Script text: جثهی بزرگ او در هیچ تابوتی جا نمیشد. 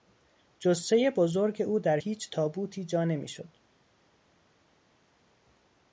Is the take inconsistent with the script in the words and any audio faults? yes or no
no